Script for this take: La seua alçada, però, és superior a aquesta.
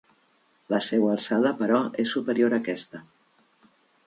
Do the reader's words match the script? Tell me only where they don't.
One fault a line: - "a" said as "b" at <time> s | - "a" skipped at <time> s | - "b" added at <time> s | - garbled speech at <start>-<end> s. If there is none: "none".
none